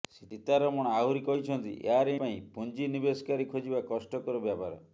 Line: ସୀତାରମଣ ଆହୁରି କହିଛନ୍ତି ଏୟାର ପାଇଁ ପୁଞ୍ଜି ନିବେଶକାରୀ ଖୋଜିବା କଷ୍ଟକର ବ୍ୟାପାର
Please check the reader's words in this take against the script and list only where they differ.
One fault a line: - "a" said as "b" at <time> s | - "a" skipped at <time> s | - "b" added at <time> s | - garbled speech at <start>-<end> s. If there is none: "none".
none